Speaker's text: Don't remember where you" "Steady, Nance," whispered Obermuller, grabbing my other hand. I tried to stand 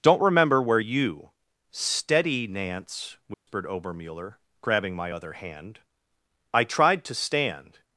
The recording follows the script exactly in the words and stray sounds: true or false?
false